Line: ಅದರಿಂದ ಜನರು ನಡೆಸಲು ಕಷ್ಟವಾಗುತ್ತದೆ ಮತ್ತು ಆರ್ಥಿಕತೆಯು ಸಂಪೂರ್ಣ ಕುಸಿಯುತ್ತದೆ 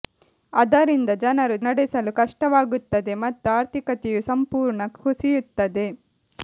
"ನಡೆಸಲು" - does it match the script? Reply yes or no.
yes